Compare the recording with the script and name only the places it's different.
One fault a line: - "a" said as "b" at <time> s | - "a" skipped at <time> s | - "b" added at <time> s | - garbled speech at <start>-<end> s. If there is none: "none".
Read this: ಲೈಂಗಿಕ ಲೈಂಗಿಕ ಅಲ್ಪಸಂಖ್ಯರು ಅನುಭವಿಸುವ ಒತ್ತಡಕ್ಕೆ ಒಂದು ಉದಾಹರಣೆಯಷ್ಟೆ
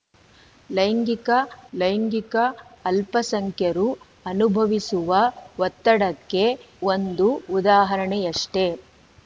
none